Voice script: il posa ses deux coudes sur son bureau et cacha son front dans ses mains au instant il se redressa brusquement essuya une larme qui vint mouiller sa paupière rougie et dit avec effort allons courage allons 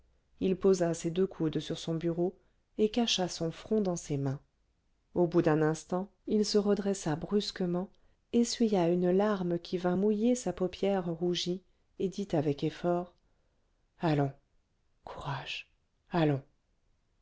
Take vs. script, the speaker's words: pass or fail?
fail